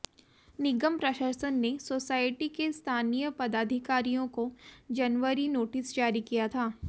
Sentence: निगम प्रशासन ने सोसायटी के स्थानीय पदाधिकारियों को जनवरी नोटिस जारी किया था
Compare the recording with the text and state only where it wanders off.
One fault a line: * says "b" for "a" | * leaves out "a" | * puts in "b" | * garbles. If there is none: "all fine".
all fine